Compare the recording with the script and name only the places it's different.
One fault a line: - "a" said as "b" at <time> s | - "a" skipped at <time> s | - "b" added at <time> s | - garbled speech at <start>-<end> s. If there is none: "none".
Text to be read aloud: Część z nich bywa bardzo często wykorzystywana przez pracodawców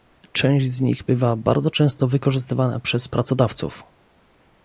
none